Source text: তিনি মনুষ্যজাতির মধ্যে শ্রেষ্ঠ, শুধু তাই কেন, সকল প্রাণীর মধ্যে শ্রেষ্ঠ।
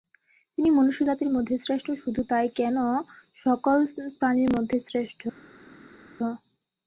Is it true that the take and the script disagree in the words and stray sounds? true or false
false